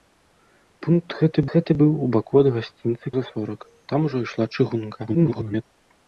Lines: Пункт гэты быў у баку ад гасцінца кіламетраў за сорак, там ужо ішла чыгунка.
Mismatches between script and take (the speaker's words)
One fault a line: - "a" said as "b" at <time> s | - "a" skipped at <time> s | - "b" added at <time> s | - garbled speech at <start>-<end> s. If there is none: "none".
- "гэты" added at 1.5 s
- "кіламетраў" skipped at 3.1 s
- garbled speech at 5.1-5.6 s